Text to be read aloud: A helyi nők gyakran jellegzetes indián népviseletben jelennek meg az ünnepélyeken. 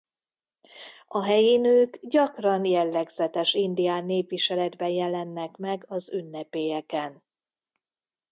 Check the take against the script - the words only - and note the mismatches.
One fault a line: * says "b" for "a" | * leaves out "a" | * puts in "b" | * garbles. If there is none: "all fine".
all fine